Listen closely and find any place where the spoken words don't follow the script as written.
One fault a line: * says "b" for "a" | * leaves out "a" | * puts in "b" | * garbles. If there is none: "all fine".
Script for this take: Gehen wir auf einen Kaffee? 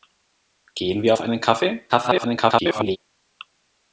* garbles